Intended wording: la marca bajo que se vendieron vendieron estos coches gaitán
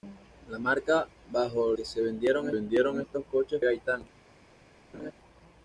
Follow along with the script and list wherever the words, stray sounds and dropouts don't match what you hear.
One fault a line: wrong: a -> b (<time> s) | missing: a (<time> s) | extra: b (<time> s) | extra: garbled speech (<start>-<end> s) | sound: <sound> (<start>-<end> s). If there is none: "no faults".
sound: laugh (4.9-5.1 s)